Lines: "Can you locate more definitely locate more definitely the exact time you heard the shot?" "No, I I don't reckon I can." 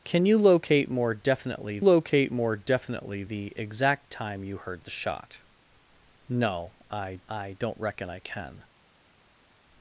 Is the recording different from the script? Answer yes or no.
no